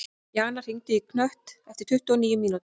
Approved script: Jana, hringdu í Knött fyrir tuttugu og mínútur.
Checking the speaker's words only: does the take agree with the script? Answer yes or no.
no